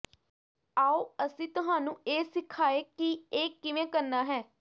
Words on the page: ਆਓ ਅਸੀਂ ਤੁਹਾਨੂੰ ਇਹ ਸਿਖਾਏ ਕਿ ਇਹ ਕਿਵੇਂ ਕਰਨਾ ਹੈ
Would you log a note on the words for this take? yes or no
no